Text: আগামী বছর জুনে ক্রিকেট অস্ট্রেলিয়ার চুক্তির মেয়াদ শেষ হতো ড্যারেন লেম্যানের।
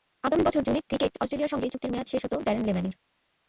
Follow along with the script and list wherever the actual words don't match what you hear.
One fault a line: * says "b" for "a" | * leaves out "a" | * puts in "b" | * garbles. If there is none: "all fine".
* puts in "সঙ্গে"